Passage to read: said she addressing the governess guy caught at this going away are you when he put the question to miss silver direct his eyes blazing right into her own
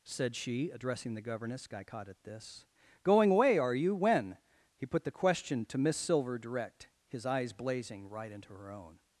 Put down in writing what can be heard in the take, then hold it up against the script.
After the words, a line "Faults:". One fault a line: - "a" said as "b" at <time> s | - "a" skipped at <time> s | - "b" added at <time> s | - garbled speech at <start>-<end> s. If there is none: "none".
said she addressing the governess guy caught at this going away are you when he put the question to miss silver direct his eyes blazing right into her own
Faults:
none